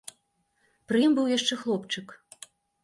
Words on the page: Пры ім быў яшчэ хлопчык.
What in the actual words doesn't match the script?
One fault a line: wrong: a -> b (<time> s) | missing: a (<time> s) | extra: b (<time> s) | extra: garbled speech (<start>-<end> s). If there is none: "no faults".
no faults